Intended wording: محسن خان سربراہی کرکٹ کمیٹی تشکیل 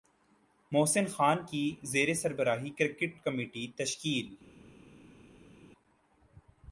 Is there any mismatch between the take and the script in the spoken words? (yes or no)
yes